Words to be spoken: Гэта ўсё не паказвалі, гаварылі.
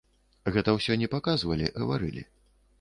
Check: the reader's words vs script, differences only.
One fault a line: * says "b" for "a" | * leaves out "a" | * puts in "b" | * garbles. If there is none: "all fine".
all fine